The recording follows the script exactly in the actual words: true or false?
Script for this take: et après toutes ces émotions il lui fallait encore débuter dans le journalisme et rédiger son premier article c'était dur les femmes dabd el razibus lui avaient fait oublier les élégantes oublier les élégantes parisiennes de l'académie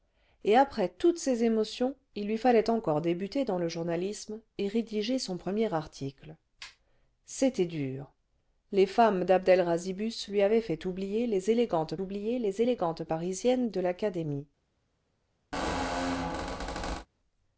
true